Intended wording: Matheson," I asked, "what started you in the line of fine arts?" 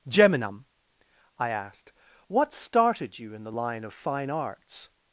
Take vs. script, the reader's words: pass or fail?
fail